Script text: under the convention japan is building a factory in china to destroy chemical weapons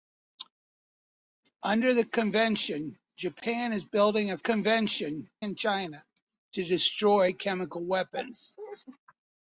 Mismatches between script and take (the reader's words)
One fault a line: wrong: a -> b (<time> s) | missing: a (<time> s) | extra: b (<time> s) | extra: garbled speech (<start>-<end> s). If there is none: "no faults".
wrong: factory -> convention (4.4 s)